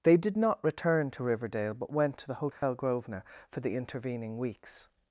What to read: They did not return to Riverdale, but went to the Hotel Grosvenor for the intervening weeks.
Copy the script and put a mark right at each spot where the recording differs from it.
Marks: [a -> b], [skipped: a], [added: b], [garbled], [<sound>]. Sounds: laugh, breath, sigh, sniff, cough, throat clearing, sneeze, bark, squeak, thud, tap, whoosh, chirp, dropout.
They did not return to Riverdale, but went to the Hotel [dropout] Grosvenor for the intervening weeks.